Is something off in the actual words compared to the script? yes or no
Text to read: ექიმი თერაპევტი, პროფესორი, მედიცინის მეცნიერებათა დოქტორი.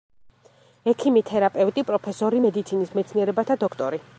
no